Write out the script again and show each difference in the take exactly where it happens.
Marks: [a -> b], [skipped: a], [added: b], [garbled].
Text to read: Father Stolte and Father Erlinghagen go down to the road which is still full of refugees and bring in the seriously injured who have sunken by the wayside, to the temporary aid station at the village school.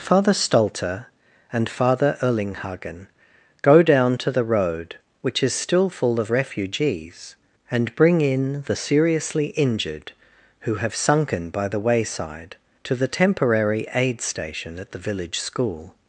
Father Stolte and Father Erlinghagen go down to the road which is still full of refugees and bring in the seriously injured who have sunken by the wayside, to the temporary aid station at the village school.